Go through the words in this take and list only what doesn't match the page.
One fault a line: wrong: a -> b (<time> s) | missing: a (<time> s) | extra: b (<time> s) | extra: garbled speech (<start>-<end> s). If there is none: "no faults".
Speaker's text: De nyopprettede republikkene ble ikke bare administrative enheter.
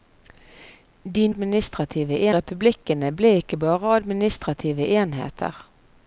wrong: nyopprettede -> administrative (1.3 s)